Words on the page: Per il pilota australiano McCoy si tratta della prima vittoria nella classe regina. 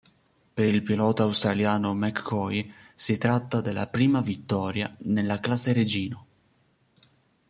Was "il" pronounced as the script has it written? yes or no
yes